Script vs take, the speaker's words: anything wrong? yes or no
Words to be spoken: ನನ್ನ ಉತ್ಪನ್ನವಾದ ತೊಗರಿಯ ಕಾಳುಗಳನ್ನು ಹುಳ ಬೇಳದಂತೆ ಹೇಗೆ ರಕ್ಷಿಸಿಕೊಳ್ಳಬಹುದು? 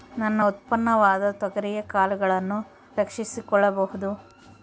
yes